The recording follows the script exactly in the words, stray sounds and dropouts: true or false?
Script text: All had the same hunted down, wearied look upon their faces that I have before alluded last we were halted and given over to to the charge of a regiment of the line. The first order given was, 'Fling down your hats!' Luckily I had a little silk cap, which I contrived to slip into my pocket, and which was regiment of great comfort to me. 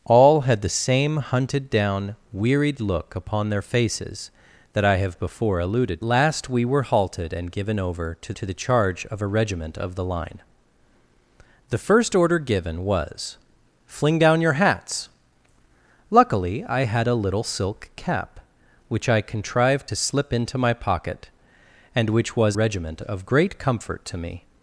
true